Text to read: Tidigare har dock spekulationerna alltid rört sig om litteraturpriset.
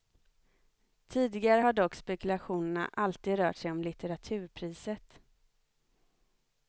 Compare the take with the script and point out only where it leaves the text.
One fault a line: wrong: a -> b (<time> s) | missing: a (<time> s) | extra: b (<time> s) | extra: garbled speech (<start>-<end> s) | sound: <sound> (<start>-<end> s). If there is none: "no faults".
no faults